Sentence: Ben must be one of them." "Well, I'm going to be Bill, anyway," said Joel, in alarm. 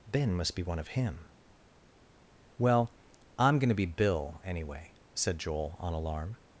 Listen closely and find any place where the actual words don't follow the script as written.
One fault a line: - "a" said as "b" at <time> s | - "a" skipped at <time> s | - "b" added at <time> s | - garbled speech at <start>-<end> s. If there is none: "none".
- "them" said as "him" at 0.9 s
- "in" said as "on" at 5.8 s